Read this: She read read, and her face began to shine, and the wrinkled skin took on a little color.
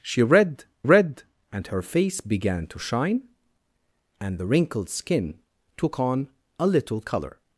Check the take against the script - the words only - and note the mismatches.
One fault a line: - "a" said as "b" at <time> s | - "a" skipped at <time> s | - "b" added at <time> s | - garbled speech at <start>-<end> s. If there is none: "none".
none